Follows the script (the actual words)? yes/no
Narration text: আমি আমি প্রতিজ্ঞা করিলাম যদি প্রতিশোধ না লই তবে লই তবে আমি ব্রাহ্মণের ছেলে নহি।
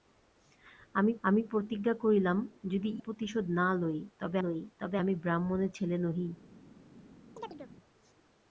yes